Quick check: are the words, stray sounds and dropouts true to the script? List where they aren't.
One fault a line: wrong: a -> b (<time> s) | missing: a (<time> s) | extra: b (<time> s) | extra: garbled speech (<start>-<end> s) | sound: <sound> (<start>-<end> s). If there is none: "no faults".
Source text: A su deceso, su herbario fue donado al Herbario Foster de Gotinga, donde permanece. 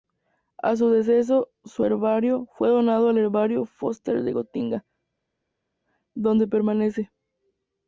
no faults